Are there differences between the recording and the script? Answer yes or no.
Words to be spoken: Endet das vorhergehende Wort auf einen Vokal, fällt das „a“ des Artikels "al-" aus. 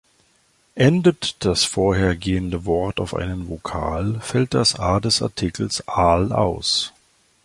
no